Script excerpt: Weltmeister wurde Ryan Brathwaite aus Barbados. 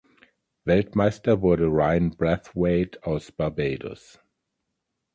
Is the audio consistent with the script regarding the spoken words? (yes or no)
yes